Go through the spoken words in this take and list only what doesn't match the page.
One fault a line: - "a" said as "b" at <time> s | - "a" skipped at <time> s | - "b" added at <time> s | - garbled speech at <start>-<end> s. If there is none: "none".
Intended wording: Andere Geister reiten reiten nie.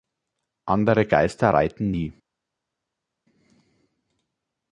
- "reiten" skipped at 1.9 s